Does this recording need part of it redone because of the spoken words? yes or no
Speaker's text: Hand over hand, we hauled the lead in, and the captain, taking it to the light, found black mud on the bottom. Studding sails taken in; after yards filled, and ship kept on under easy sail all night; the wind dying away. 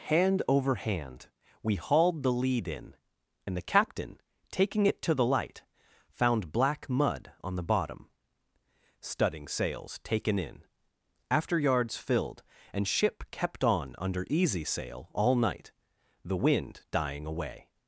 no